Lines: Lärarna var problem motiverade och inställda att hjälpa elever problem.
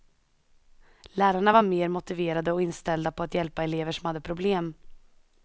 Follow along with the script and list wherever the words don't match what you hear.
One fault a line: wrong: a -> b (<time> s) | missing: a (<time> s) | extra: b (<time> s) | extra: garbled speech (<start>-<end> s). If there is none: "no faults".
wrong: problem -> mer (1.6 s)
extra: på (3.1 s)
extra: som hade (3.9 s)